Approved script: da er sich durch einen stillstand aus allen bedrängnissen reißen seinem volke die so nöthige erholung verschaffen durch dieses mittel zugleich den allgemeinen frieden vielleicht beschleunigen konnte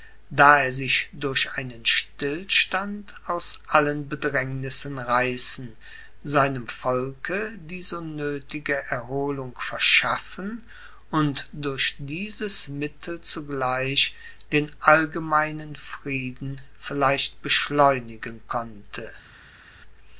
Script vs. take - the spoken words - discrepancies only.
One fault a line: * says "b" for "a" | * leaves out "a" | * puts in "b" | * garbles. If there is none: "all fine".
* puts in "und"